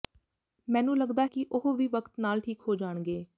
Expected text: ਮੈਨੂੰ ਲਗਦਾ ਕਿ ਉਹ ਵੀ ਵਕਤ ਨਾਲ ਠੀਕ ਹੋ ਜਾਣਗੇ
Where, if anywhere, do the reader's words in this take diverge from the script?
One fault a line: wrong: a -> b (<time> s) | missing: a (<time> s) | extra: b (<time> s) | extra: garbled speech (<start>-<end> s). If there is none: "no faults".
no faults